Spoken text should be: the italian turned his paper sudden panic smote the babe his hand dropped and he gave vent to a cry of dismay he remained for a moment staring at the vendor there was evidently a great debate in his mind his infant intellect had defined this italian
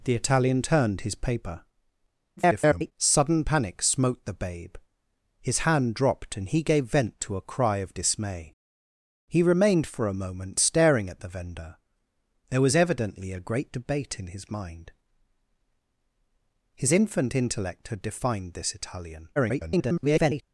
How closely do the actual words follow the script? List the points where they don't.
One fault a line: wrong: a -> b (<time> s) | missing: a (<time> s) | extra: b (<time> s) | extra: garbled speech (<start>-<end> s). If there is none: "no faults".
extra: garbled speech (2.4-2.9 s)
extra: garbled speech (19.4-20.4 s)